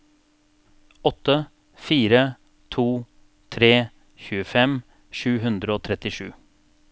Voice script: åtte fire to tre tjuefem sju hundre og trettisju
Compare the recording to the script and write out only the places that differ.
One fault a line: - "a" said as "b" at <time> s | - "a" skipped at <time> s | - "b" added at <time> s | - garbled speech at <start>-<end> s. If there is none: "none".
none